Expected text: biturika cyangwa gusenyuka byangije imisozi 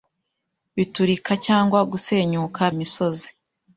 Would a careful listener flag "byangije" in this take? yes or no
yes